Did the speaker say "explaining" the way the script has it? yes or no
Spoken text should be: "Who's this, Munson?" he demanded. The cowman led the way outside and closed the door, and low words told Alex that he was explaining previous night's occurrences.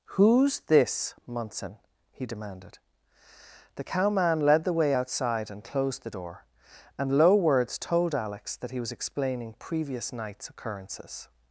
yes